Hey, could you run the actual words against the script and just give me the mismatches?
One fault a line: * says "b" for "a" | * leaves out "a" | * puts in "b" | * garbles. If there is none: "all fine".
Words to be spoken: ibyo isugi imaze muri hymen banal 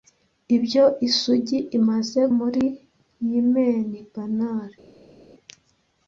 all fine